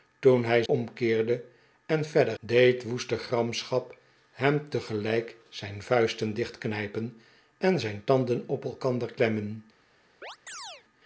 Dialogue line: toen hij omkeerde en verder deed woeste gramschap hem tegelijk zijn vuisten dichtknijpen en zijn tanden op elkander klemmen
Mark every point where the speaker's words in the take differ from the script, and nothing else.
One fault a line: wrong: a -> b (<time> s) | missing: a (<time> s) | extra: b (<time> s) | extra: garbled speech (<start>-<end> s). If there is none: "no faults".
no faults